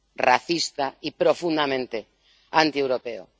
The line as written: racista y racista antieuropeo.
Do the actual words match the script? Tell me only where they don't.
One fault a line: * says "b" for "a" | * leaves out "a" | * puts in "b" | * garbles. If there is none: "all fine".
* says "profundamente" for "racista"